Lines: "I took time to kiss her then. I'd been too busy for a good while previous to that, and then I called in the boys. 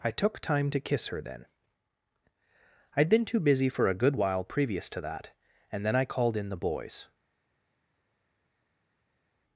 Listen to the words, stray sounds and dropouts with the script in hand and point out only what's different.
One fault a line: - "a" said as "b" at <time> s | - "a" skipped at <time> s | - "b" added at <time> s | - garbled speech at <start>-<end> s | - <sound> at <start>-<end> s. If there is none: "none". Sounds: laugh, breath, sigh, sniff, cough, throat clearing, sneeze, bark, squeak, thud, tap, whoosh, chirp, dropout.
none